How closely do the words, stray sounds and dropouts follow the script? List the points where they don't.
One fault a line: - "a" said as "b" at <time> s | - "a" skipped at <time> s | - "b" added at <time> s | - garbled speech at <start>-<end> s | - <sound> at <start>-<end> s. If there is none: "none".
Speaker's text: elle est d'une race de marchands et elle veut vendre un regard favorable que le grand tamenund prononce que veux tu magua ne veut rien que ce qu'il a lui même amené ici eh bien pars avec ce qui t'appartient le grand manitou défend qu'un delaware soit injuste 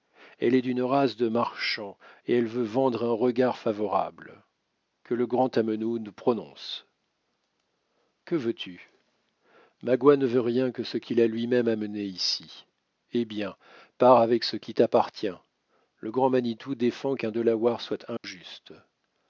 - dropout at 18.2-18.2 s